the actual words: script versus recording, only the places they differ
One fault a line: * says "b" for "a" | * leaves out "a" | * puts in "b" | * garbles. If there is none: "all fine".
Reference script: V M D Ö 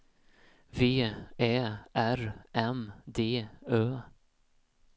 * puts in "Ä R"